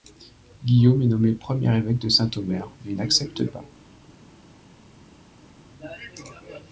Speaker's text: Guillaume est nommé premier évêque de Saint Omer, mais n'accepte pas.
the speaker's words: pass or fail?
pass